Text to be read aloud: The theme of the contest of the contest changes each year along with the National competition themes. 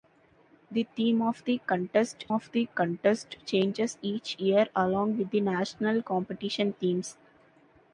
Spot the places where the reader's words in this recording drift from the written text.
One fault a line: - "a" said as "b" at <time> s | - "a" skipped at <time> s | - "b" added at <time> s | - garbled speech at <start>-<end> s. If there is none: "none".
none